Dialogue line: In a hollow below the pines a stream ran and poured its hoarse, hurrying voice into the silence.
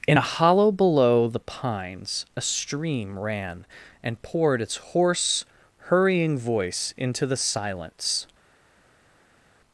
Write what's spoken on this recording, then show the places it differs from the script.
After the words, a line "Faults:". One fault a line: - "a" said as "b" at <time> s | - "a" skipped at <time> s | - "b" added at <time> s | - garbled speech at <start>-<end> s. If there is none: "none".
In a hollow below the pines a stream ran and poured its hoarse, hurrying voice into the silence.
Faults:
none